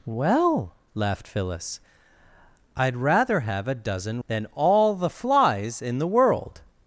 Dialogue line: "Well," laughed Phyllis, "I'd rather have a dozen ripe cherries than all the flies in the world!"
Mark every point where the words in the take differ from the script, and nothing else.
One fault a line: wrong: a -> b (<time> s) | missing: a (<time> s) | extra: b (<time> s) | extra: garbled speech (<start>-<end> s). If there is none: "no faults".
missing: ripe cherries (4.2 s)